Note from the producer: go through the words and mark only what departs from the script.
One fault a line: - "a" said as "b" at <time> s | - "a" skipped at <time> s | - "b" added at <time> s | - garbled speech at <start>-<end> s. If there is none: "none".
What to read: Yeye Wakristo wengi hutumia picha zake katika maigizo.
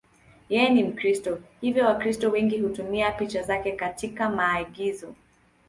- "ni Mkristo hivyo" added at 0.7 s